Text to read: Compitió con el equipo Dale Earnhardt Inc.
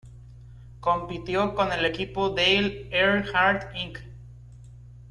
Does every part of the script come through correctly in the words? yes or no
yes